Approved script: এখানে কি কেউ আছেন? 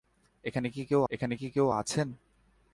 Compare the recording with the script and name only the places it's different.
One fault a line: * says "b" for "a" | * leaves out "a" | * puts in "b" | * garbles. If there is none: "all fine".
* puts in "এখানে কি কেউ"